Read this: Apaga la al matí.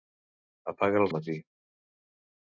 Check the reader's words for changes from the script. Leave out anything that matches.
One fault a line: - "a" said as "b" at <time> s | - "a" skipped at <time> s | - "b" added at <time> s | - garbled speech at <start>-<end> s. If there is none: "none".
none